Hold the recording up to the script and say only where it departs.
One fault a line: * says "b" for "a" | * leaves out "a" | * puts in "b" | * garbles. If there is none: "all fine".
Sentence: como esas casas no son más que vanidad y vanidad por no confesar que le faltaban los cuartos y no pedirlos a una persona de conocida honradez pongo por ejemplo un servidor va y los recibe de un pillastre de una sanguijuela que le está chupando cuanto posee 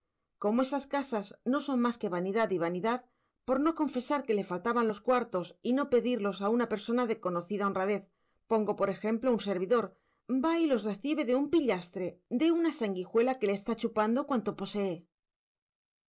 all fine